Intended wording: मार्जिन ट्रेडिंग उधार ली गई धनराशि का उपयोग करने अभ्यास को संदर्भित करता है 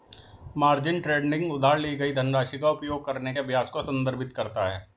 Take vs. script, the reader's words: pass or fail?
pass